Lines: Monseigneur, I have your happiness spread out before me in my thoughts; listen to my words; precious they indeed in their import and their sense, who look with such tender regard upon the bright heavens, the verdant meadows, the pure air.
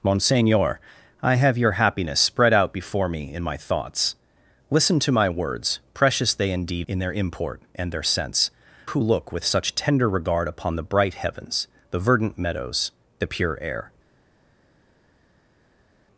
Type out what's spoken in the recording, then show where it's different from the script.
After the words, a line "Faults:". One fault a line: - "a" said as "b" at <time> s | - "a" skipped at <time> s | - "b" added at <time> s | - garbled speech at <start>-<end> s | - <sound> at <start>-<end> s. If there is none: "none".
Monseigneur, I have your happiness spread out before me in my thoughts; listen to my words; precious they indeed in their import and their sense, who look with such tender regard upon the bright heavens, the verdant meadows, the pure air.
Faults:
none